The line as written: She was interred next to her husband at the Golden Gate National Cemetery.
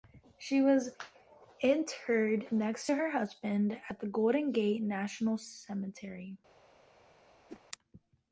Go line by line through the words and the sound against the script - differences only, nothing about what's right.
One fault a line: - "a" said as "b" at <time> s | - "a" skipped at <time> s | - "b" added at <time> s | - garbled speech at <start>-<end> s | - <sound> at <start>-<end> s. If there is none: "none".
- whoosh at 7.5-7.6 s